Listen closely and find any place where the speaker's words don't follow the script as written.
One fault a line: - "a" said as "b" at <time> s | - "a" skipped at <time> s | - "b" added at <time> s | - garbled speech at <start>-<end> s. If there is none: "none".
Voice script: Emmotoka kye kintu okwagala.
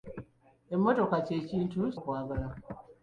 none